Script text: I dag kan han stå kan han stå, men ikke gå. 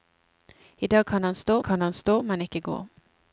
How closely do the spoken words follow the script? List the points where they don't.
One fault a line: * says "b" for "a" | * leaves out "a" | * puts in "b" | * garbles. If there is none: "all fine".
all fine